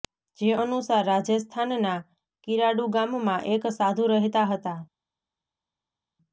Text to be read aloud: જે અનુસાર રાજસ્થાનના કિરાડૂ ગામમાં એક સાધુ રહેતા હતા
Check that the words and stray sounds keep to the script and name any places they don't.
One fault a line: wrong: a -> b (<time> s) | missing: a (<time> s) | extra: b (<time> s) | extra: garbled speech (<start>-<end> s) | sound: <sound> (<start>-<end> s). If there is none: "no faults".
no faults